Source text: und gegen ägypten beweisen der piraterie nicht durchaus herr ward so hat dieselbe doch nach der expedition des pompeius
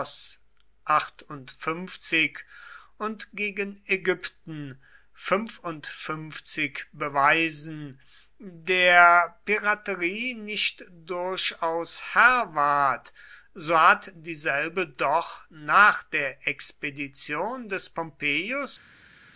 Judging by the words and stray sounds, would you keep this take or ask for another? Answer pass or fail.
pass